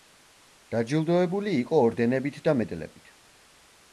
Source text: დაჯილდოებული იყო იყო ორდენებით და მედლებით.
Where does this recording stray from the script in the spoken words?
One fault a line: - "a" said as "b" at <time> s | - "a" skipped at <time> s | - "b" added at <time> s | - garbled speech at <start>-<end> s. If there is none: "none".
- "იყო" skipped at 1.8 s